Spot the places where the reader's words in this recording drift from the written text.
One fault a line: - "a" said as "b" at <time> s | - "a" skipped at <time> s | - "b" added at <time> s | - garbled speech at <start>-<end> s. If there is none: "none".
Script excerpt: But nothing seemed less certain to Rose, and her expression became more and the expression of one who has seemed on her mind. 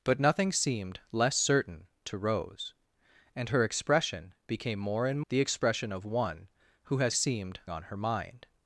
none